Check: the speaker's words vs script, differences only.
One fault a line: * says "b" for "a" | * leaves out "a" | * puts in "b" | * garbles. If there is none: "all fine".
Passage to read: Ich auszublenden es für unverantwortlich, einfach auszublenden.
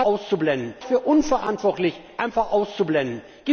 all fine